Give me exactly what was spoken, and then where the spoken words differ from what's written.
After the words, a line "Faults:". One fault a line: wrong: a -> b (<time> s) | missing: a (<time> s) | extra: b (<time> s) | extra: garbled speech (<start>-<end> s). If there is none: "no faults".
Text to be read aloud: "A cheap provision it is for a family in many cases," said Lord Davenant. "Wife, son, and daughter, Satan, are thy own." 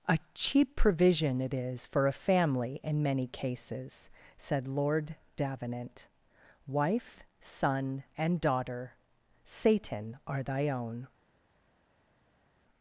"A cheap provision it is for a family in many cases," said Lord Davenant. "Wife, son, and daughter, Satan, are thy own."
Faults:
no faults